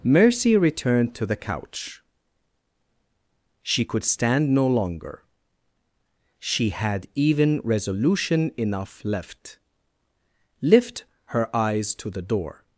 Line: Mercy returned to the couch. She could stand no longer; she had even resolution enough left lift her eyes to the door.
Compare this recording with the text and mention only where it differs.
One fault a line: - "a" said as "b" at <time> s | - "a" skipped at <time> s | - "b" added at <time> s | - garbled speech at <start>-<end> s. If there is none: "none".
none